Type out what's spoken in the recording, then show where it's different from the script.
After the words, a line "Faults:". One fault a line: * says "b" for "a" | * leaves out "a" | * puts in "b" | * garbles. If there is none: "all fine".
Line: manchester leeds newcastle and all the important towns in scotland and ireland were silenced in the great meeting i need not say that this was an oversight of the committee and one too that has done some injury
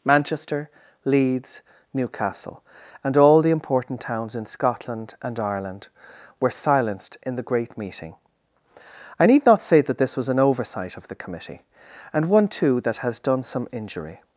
manchester leeds newcastle and all the important towns in scotland and ireland were silenced in the great meeting i need not say that this was an oversight of the committee and one too that has done some injury
Faults:
all fine